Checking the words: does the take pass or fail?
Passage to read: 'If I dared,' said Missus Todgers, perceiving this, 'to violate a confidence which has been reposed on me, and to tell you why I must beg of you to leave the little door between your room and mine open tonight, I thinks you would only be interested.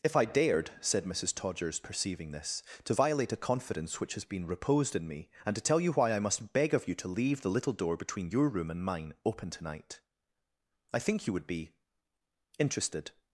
fail